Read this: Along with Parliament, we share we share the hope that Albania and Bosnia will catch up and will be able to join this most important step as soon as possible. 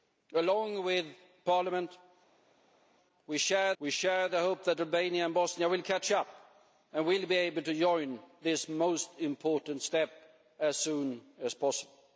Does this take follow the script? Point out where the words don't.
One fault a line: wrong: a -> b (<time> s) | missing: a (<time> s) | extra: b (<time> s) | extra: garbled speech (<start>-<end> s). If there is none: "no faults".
no faults